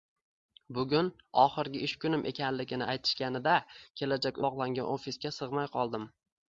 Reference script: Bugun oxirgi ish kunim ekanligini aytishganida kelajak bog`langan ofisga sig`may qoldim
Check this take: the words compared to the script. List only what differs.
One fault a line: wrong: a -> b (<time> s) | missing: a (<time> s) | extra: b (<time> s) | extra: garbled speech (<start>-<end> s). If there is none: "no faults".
no faults